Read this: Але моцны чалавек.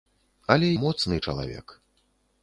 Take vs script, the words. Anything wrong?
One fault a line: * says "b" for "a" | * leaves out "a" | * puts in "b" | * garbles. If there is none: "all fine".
all fine